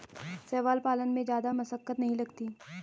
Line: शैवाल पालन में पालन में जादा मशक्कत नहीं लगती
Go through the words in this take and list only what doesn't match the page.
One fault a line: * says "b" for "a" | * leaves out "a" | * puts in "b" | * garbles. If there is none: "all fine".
* leaves out "पालन में"